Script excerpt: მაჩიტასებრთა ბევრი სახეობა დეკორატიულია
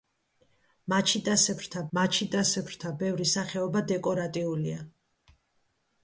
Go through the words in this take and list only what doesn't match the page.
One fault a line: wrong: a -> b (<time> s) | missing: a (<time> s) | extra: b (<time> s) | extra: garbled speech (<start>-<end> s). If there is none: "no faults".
extra: მაჩიტასებრთა (2.0 s)